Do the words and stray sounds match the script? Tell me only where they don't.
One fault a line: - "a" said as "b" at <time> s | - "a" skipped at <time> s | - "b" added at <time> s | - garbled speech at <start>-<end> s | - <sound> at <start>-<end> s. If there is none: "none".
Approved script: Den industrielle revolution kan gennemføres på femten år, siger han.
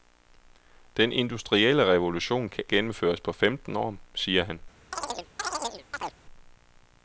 - chirp at 4.9-6.2 s